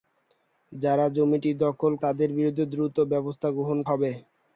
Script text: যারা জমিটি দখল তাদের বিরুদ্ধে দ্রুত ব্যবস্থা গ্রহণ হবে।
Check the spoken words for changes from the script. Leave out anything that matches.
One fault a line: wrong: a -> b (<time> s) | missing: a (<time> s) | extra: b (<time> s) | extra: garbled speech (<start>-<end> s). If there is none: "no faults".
no faults